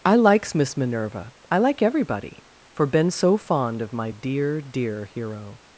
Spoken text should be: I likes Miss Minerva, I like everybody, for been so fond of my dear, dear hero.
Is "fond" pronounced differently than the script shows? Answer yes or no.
no